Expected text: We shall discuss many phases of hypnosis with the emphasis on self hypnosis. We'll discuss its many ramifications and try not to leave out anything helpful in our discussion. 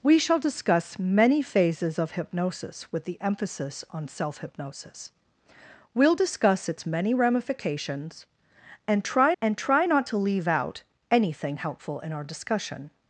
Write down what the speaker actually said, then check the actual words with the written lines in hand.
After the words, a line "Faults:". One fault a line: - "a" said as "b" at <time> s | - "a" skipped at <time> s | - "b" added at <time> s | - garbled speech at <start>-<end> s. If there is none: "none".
We shall discuss many phases of hypnosis with the emphasis on self hypnosis. We'll discuss its many ramifications and try and try not to leave out anything helpful in our discussion.
Faults:
- "and try" added at 9.4 s